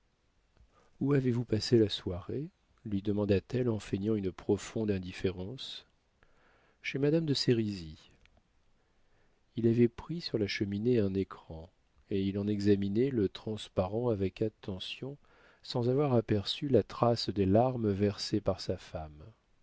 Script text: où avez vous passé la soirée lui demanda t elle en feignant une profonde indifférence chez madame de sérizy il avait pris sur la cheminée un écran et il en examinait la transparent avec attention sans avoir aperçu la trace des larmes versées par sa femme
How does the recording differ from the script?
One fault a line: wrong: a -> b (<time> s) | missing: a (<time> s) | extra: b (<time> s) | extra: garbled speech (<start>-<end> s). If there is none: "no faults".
wrong: la -> le (13.1 s)